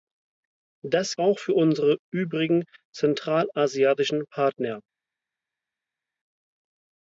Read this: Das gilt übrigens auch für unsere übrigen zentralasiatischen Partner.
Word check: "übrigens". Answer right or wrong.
wrong